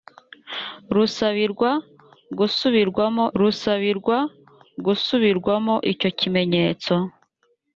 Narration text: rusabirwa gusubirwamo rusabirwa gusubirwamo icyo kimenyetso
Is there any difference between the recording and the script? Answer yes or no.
no